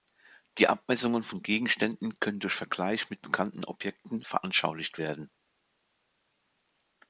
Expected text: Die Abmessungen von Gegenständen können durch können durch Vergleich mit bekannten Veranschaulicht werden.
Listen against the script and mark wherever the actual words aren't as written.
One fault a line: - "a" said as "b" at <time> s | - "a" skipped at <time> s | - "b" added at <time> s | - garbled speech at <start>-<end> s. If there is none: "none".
- "können durch" skipped at 2.5 s
- "Objekten" added at 3.6 s